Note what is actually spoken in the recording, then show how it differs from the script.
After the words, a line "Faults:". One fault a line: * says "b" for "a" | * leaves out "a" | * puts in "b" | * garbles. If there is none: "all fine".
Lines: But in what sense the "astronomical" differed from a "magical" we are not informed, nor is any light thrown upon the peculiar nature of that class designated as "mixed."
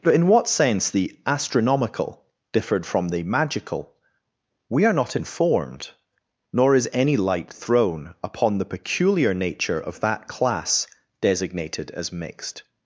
But in what sense the "astronomical" differed from the "magical" we are not informed, nor is any light thrown upon the peculiar nature of that class designated as "mixed."
Faults:
* says "the" for "a"